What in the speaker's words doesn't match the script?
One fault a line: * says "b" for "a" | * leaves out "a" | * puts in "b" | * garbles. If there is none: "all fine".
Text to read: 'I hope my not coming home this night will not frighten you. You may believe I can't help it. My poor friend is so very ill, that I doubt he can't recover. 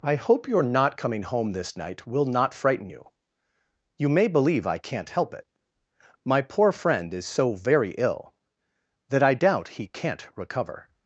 * says "your" for "my"